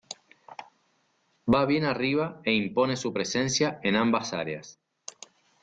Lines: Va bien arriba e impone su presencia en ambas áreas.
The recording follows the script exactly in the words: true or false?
true